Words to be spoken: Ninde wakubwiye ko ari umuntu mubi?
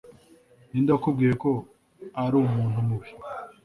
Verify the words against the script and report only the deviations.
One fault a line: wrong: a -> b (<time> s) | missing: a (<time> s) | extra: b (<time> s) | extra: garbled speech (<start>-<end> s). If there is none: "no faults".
no faults